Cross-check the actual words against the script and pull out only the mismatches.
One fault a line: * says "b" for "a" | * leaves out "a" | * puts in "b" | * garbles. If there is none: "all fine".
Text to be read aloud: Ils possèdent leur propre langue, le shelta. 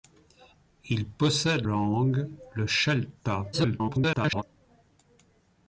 * leaves out "leur propre"
* garbles